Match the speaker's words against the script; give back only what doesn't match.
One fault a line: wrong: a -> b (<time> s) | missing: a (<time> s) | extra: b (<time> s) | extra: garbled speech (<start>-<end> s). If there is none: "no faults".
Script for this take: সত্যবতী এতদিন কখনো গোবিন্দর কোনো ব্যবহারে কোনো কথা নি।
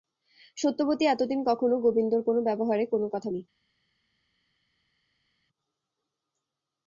no faults